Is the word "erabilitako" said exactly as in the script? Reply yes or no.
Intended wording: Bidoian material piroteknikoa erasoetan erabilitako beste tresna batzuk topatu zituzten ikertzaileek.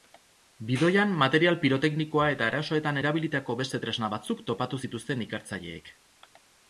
yes